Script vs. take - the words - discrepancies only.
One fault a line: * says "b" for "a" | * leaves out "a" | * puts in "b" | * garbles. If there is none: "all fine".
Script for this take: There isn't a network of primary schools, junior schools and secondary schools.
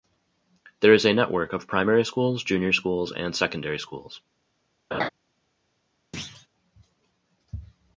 * says "is" for "isn't"